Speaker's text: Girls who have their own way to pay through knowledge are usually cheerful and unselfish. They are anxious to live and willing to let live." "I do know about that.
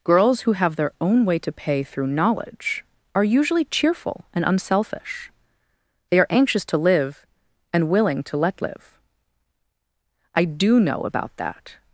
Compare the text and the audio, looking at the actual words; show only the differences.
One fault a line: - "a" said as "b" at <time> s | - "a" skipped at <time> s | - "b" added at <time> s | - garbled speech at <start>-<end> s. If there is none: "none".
none